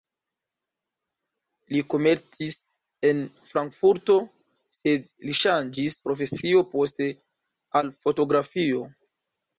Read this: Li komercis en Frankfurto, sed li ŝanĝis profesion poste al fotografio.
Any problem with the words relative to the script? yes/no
no